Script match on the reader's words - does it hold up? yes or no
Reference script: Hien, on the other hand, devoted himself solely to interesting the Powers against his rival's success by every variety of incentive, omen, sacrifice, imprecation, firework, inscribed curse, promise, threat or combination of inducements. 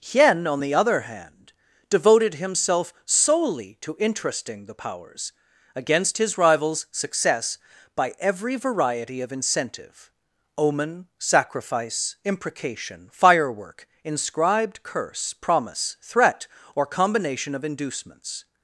yes